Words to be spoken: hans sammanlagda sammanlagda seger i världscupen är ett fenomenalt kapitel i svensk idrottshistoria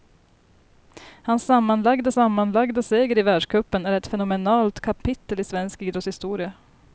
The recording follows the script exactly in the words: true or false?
true